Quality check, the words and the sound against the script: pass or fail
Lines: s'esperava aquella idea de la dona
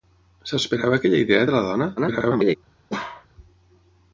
fail